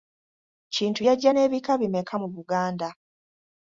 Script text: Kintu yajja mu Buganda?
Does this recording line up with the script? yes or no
no